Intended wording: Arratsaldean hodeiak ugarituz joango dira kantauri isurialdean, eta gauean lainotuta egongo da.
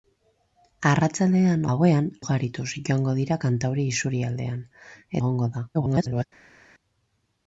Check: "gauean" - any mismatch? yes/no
yes